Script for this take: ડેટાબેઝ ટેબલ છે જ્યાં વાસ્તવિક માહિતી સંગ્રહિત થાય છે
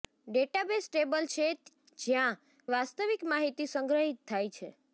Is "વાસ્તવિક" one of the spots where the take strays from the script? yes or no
no